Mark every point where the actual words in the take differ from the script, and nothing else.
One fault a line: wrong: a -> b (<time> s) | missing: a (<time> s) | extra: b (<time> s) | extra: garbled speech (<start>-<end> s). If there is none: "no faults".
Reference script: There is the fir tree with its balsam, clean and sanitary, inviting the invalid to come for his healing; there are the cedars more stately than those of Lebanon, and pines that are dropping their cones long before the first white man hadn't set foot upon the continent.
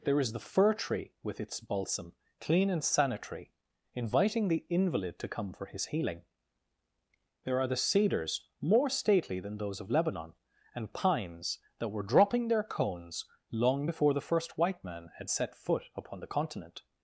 wrong: are -> were (11.9 s)
wrong: hadn't -> had (15.2 s)